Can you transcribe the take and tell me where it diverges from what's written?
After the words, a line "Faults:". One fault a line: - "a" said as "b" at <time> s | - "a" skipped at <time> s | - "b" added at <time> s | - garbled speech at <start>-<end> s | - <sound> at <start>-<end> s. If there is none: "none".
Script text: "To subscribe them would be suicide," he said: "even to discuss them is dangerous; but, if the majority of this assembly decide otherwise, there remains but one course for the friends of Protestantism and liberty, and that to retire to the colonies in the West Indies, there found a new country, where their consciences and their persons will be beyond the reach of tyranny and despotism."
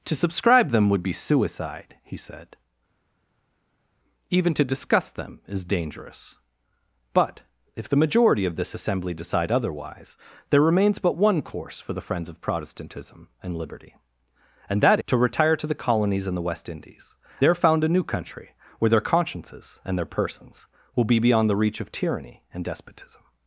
"To subscribe them would be suicide," he said: "even to discuss them is dangerous; but, if the majority of this assembly decide otherwise, there remains but one course for the friends of Protestantism and liberty, and that to retire to the colonies in the West Indies, there found a new country, where their consciences and their persons will be beyond the reach of tyranny and despotism."
Faults:
none